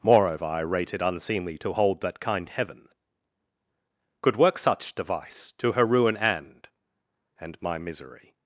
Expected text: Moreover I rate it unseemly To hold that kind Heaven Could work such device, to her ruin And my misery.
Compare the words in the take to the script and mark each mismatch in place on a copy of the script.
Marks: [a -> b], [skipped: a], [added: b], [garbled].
Moreover I rate it unseemly To hold that kind Heaven Could work such device, to her ruin And [added: And] my misery.